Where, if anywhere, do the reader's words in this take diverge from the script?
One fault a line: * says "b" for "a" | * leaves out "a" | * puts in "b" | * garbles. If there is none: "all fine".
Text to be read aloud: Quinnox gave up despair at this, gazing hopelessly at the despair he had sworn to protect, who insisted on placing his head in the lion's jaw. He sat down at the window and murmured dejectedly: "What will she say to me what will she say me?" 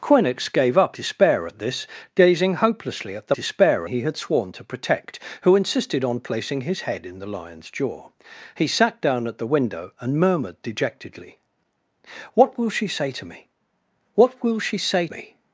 all fine